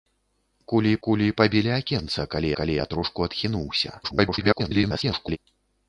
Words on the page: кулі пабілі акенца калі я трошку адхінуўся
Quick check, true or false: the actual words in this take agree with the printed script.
false